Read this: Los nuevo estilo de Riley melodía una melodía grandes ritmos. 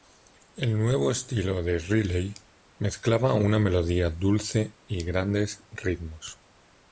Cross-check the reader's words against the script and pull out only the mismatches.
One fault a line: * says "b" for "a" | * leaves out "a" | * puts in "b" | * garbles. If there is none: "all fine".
* says "El" for "Los"
* says "mezclaba" for "melodía"
* puts in "dulce y"